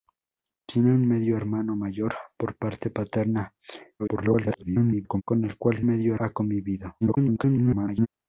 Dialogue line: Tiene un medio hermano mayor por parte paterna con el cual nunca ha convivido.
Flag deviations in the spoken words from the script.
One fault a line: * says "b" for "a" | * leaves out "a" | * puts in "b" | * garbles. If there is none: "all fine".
* garbles
* says "medio" for "nunca"
* garbles